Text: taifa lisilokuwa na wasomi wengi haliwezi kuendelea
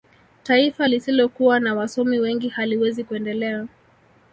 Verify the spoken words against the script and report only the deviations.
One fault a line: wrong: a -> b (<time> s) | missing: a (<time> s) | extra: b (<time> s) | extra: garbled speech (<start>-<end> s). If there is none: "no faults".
no faults